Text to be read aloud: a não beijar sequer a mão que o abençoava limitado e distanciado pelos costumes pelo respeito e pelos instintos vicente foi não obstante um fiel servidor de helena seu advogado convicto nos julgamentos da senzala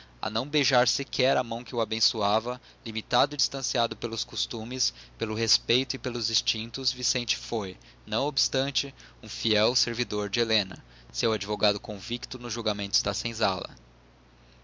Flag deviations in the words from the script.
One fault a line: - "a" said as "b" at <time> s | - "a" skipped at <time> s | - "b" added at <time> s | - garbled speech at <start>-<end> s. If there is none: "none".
none